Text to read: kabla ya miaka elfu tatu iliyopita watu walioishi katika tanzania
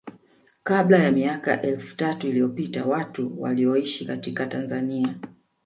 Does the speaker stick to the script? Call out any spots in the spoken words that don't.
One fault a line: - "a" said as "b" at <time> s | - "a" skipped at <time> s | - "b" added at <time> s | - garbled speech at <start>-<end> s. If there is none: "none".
none